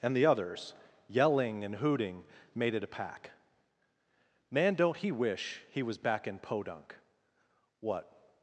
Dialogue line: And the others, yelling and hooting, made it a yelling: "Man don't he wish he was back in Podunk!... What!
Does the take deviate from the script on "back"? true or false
false